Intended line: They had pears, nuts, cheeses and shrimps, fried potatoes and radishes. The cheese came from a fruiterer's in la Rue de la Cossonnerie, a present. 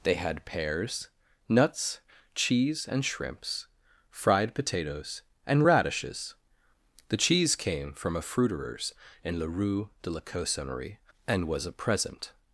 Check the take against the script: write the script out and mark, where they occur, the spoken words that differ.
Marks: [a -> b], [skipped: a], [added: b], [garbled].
They had pears, nuts, [cheeses -> cheese] and shrimps, fried potatoes and radishes. The cheese came from a fruiterer's in la Rue de la Cossonnerie, [added: and was] a present.